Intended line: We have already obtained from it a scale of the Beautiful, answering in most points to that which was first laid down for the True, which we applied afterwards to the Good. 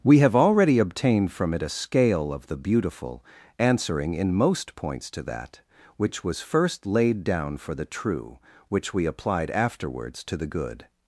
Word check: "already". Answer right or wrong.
right